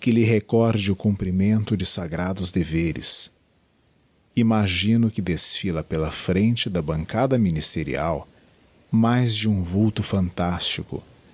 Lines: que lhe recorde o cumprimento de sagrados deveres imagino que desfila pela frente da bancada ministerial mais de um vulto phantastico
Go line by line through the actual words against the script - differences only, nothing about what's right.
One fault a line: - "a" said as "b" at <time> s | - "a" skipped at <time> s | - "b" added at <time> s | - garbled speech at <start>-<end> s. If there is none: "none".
none